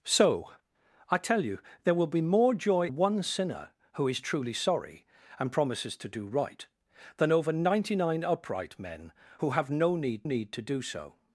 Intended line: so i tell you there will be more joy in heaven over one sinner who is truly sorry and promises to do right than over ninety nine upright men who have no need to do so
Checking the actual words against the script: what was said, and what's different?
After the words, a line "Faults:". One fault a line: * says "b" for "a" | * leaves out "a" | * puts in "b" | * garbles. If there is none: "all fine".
so i tell you there will be more joy one sinner who is truly sorry and promises to do right than over ninety nine upright men who have no need need to do so
Faults:
* leaves out "in heaven over"
* puts in "need"